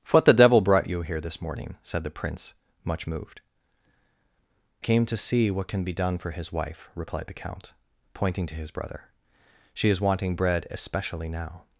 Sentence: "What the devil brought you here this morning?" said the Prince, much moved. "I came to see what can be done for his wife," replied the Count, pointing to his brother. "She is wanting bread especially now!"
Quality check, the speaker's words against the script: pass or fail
fail